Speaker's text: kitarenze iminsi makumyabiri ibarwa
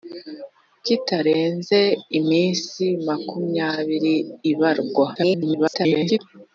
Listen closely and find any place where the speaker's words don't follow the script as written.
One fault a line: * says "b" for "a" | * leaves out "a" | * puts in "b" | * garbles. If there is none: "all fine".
* garbles